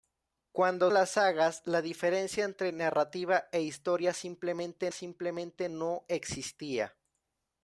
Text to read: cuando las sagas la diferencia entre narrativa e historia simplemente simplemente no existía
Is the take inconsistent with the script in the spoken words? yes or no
no